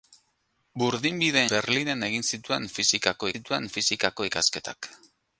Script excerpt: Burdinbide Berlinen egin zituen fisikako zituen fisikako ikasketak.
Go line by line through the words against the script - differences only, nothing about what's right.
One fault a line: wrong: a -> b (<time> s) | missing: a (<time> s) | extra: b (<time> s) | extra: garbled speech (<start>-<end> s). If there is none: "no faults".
no faults